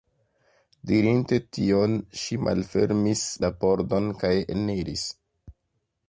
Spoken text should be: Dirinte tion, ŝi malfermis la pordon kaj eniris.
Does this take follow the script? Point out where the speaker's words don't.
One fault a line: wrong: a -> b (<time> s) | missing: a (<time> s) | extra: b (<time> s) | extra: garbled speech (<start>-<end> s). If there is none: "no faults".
no faults